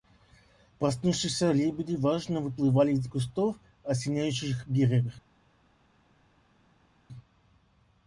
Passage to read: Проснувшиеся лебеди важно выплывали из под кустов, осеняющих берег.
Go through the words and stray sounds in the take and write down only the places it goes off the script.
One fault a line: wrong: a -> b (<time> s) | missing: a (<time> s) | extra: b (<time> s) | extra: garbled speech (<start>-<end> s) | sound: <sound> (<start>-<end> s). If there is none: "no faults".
missing: под (3.1 s)